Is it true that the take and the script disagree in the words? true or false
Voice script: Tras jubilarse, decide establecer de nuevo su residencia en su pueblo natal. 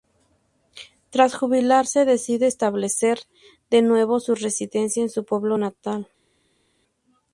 false